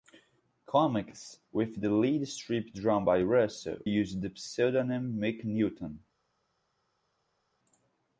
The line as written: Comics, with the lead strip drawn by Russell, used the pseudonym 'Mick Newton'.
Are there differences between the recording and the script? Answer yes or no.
no